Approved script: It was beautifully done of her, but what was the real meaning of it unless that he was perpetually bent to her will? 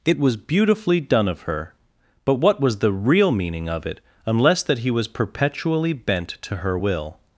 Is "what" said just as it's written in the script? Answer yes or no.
yes